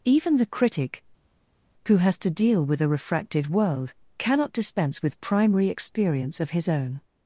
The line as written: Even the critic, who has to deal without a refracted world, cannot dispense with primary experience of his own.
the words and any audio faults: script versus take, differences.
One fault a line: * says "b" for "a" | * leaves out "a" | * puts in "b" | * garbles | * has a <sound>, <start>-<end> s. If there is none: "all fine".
* says "with" for "without"